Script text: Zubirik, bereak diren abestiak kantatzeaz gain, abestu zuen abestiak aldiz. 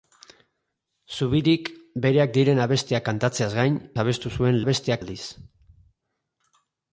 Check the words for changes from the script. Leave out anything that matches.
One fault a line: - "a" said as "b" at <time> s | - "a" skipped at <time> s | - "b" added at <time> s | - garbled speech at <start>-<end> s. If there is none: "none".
none